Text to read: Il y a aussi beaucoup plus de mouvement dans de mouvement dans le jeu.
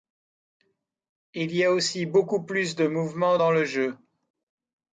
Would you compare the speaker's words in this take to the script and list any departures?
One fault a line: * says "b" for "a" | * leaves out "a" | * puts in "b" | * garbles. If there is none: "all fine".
* leaves out "de mouvement dans"